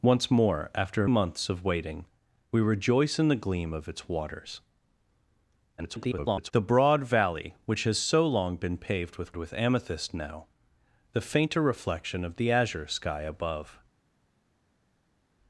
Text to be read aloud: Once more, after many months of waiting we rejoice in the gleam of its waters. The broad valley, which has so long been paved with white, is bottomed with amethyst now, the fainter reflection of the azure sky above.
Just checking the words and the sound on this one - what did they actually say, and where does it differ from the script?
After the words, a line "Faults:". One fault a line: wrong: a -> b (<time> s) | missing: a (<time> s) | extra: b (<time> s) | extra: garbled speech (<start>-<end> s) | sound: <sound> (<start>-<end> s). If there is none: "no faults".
Once more, after months of waiting we rejoice in the gleam of its waters. [garbled] The broad valley, which has so long been paved with with amethyst now, the fainter reflection of the azure sky above.
Faults:
missing: many (1.1 s)
extra: garbled speech (5.8-6.5 s)
missing: white is bottomed (9.4 s)